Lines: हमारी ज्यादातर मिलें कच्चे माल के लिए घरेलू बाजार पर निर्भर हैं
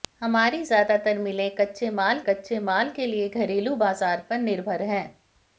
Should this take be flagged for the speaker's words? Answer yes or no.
yes